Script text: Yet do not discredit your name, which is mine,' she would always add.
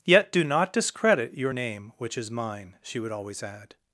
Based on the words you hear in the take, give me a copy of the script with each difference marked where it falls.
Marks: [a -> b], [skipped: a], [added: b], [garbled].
Yet do not discredit your name, which is mine,' she would always add.